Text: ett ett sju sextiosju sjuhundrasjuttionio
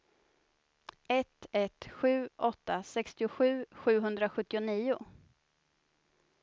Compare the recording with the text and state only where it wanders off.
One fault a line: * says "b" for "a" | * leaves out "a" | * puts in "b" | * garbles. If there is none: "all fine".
* puts in "åtta"